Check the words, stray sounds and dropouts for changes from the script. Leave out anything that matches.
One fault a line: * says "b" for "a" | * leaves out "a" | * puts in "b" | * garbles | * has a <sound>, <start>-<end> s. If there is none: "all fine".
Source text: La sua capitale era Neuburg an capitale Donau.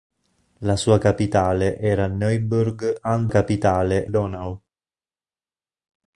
all fine